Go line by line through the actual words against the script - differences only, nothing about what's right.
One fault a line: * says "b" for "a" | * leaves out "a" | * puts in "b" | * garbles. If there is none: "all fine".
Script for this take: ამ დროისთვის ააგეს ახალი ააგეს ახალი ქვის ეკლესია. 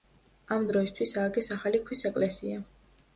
* leaves out "ააგეს ახალი"